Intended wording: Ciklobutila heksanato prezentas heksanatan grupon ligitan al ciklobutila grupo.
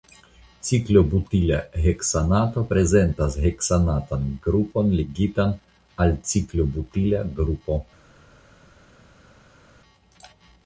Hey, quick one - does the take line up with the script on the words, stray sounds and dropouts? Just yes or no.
yes